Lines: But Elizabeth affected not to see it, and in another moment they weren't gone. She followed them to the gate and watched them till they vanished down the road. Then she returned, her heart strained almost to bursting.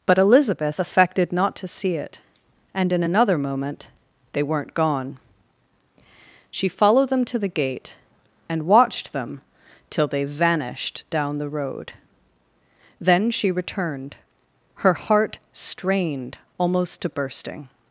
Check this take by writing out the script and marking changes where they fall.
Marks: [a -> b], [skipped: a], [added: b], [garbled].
But Elizabeth affected not to see it, and in another moment they weren't gone. She followed them to the gate and watched them till they vanished down the road. Then she returned, her heart strained almost to bursting.